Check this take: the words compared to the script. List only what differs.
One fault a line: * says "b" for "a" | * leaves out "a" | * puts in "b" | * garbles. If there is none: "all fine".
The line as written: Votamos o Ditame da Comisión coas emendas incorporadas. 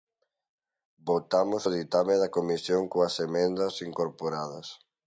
all fine